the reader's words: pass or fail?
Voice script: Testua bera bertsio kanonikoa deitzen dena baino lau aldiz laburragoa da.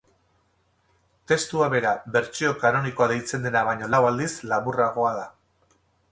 pass